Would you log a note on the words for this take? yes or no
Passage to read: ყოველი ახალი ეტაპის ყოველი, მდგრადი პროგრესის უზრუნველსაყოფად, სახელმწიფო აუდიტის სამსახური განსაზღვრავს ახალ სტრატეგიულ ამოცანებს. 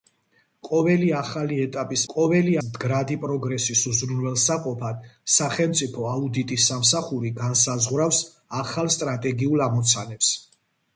no